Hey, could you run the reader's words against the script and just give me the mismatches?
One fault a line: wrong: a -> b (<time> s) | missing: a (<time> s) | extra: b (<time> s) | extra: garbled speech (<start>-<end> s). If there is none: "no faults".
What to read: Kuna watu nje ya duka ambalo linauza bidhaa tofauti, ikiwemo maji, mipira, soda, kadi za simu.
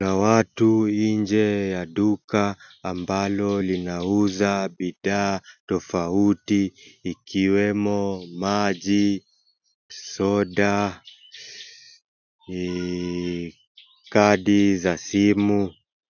missing: mipira (9.2 s)